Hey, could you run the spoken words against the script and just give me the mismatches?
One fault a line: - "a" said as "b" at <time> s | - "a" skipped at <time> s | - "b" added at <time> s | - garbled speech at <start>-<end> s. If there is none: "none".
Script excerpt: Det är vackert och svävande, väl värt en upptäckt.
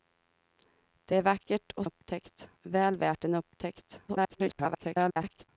- "svävande" said as "upptäckt" at 1.8 s
- garbled speech at 4.1-5.5 s